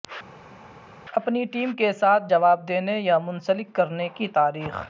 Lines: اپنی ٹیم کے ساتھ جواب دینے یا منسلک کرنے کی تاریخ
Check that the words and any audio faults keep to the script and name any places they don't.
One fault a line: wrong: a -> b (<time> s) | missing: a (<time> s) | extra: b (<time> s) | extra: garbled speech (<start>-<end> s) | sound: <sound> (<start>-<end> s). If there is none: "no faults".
no faults